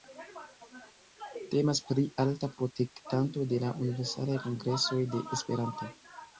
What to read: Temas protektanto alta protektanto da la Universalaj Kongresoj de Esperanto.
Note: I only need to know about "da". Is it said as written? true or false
false